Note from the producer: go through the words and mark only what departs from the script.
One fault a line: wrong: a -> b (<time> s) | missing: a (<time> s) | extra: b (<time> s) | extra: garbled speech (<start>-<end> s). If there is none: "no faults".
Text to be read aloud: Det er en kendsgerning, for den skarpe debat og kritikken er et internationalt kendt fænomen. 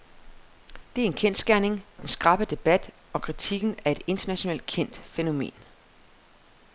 missing: for (1.9 s)